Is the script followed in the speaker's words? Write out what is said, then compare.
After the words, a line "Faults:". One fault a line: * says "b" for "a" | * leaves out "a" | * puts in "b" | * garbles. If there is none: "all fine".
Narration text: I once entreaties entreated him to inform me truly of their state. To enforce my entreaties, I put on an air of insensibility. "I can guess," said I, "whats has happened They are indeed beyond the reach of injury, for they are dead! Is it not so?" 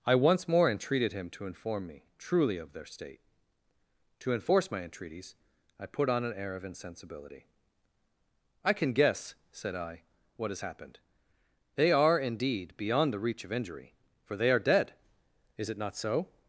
I once more entreated him to inform me truly of their state. To enforce my entreaties, I put on an air of insensibility. "I can guess," said I, "what has happened They are indeed beyond the reach of injury, for they are dead! Is it not so?"
Faults:
* says "more" for "entreaties"
* says "what" for "whats"